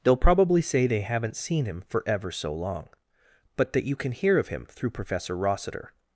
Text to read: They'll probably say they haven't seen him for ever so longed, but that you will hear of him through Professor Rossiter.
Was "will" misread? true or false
true